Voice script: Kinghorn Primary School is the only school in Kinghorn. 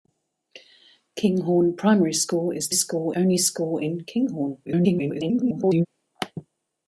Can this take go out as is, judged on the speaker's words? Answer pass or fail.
fail